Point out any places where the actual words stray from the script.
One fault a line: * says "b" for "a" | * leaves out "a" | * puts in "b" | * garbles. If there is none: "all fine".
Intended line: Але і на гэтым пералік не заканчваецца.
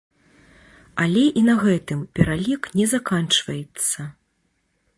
all fine